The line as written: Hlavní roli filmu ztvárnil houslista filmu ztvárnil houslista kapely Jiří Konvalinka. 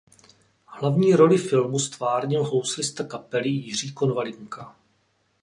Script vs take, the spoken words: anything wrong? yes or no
yes